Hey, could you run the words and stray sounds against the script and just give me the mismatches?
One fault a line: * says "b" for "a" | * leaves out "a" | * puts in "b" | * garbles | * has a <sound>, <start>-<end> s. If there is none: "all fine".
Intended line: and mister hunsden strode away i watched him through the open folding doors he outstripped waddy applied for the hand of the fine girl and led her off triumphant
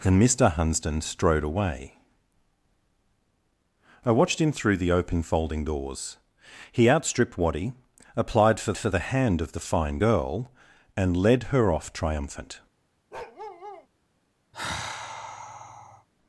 * puts in "for"
* has a bark, 13.1-13.9 s
* has a sigh, 14.5-16.1 s